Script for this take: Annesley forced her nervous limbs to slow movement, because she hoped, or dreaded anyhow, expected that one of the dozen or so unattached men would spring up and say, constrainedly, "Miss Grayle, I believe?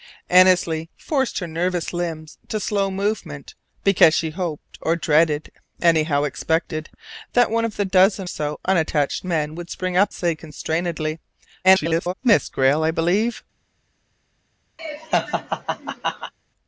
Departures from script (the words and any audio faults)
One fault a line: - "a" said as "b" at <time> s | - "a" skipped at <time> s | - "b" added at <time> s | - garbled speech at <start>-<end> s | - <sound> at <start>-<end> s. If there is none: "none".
- "or" skipped at 8.3 s
- "and" skipped at 10.1 s
- garbled speech at 11.6-12.1 s
- laugh at 14.8-16.3 s